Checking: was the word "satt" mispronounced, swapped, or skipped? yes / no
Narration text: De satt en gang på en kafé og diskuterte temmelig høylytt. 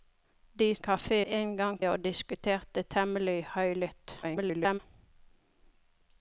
yes